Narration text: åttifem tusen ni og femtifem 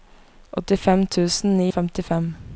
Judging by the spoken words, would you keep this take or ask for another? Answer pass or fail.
pass